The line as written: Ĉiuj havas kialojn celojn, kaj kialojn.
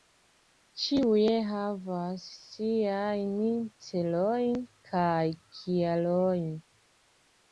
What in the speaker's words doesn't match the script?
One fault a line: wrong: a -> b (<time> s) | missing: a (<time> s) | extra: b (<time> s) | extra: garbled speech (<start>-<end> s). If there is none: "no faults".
wrong: kialojn -> siajn (2.5 s)